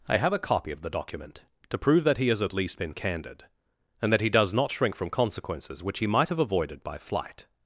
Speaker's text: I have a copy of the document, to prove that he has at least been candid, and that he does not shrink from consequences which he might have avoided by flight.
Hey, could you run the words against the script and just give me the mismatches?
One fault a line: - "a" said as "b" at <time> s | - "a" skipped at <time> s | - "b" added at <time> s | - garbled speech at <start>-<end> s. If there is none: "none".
none